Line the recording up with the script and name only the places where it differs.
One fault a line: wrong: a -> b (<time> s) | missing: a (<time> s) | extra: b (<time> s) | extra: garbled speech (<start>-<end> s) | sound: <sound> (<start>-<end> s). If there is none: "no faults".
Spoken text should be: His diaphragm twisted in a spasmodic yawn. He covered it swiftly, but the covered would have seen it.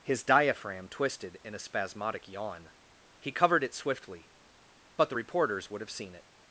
wrong: covered -> reporters (5.1 s)